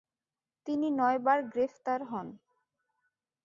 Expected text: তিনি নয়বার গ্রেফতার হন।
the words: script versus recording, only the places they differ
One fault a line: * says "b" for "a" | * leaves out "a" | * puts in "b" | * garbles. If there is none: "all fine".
all fine